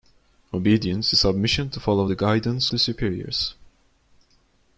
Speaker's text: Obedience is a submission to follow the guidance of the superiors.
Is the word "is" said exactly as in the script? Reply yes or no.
no